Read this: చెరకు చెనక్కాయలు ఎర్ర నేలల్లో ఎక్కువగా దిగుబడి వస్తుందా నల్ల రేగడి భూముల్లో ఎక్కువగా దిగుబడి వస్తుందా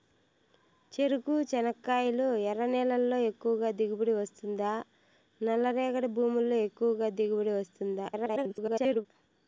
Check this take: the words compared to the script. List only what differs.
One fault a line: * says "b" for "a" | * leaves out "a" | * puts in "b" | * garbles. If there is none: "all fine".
* garbles